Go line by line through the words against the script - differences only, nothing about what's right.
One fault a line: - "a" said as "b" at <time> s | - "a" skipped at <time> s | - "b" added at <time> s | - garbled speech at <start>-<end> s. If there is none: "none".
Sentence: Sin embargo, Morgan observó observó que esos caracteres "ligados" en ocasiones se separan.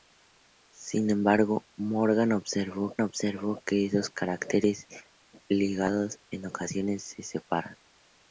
none